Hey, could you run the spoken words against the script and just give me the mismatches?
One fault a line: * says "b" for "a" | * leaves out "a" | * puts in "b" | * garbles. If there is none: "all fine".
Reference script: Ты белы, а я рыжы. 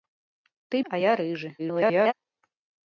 * leaves out "белы"
* garbles